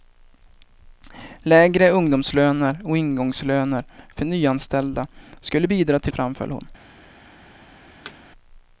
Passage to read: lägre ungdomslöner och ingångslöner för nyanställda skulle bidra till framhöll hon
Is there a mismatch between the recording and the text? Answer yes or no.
no